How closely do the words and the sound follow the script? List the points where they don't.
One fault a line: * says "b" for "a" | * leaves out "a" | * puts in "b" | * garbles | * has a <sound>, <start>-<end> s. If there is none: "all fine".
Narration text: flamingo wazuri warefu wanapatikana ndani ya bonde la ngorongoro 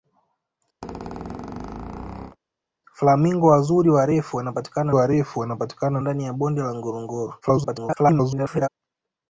* has a squeak, 0.8-2.4 s
* puts in "warefu wanapatikana"
* garbles